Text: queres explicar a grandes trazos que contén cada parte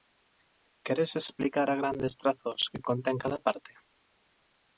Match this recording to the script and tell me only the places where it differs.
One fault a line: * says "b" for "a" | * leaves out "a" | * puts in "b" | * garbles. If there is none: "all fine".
all fine